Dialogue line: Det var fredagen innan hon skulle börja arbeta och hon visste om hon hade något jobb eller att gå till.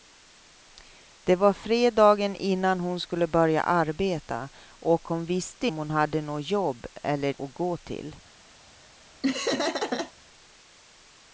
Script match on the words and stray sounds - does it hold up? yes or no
no